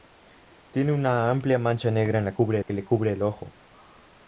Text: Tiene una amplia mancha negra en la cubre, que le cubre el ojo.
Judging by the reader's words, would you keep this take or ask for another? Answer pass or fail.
pass